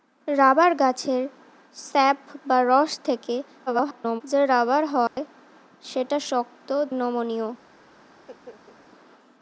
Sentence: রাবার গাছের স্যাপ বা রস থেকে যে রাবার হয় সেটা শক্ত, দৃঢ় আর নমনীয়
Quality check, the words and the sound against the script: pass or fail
fail